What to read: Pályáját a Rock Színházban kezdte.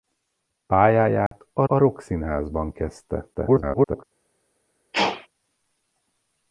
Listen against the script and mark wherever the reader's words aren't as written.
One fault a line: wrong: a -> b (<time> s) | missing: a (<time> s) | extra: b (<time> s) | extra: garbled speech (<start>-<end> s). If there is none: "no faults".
extra: a (1.7 s)
extra: garbled speech (3.3-4.0 s)